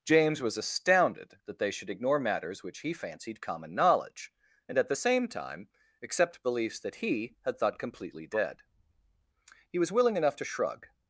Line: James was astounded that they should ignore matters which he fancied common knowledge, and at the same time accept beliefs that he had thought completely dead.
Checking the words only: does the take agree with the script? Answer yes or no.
no